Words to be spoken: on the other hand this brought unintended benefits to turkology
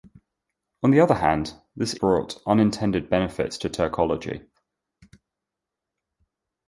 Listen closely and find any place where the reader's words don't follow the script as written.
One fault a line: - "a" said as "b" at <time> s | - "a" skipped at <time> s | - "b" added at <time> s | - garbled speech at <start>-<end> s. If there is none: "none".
none